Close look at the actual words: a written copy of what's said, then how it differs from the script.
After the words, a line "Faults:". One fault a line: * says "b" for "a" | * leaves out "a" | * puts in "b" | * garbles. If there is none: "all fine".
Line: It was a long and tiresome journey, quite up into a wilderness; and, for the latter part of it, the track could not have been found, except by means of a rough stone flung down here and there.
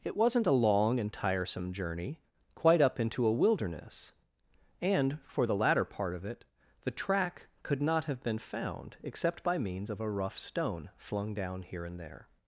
It wasn't a long and tiresome journey, quite up into a wilderness; and, for the latter part of it, the track could not have been found, except by means of a rough stone flung down here and there.
Faults:
* says "wasn't" for "was"